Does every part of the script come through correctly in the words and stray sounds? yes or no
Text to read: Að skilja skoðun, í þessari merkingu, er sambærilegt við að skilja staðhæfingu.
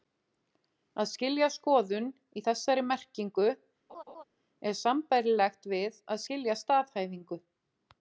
no